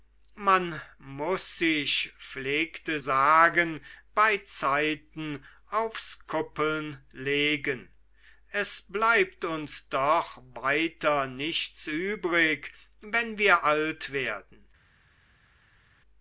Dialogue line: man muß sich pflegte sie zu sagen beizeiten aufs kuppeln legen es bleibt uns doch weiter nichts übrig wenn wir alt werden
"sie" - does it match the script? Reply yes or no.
no